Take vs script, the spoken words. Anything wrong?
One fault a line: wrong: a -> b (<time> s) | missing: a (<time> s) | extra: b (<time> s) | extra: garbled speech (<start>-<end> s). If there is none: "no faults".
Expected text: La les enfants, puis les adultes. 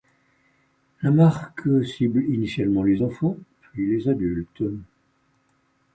extra: marque cible initialement (1.1 s)